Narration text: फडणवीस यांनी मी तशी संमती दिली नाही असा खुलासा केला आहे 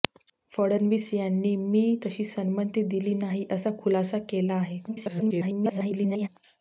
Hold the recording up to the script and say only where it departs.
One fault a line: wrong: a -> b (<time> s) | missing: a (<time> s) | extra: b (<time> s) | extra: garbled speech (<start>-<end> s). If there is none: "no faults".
extra: garbled speech (4.9-6.3 s)